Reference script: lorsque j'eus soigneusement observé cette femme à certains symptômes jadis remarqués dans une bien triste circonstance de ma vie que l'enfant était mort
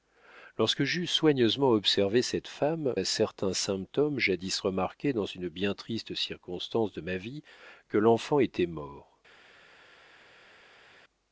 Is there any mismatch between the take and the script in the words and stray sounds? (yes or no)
no